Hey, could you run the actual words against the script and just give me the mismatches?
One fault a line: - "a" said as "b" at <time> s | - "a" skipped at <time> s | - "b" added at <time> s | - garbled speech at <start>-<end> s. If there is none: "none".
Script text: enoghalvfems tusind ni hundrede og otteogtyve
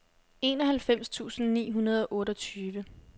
none